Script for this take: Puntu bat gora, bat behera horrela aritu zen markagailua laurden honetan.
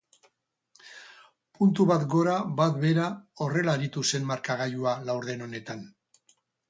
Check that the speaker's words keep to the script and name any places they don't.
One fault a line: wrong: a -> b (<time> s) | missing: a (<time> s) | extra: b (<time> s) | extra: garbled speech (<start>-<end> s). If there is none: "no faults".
no faults